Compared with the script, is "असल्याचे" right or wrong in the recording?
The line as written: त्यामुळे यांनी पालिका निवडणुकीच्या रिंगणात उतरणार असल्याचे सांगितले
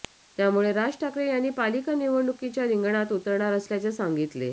right